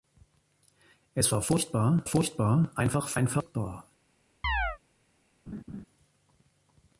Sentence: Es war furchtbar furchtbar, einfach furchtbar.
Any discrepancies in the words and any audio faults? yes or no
yes